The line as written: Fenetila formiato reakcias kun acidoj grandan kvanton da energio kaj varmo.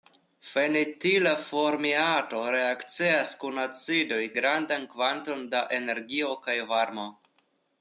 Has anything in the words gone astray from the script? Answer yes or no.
no